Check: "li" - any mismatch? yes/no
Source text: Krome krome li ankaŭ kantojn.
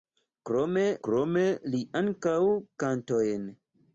no